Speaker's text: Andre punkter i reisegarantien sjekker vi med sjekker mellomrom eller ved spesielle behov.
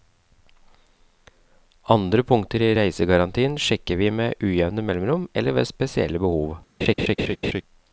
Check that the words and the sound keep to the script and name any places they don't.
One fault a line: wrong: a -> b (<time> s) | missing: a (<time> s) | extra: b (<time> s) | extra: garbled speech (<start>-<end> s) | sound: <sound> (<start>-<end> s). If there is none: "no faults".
wrong: sjekker -> ujevne (4.4 s)
sound: laugh (6.8-7.6 s)